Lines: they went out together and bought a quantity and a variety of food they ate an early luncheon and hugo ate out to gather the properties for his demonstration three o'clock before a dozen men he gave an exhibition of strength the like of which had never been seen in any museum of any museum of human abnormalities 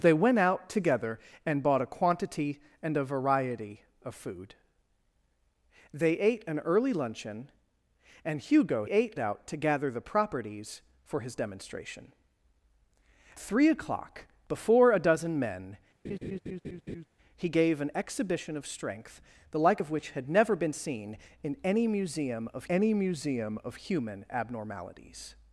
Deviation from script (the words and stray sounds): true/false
true